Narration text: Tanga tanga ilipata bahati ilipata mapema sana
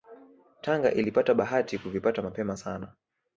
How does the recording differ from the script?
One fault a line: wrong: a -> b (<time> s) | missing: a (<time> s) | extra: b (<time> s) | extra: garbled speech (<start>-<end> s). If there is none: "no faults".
missing: tanga (0.9 s)
wrong: ilipata -> kuvipata (1.8 s)